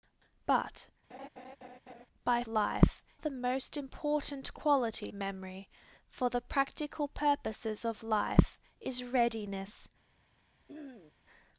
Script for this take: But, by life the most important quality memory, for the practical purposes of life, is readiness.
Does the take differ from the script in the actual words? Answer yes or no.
no